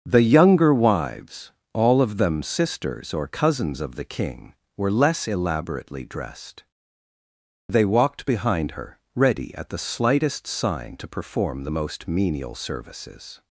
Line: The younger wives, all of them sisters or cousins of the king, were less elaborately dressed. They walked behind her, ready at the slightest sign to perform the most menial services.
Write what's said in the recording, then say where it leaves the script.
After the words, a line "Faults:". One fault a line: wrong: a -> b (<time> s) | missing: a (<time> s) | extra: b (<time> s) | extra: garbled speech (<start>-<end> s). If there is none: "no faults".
The younger wives, all of them sisters or cousins of the king, were less elaborately dressed. They walked behind her, ready at the slightest sign to perform the most menial services.
Faults:
no faults